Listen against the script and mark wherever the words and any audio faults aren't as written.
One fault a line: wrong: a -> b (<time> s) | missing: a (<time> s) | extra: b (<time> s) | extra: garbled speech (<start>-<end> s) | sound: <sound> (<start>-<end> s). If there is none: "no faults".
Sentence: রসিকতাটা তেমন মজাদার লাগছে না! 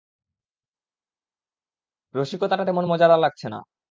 no faults